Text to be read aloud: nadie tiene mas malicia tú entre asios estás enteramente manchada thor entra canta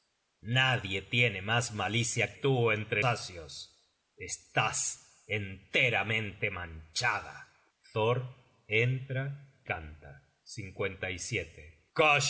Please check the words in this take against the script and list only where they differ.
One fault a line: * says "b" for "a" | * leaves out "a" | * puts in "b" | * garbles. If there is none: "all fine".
all fine